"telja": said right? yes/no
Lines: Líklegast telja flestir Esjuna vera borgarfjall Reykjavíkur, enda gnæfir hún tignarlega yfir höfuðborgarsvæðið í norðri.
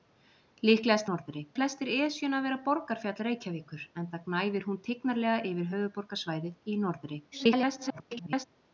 no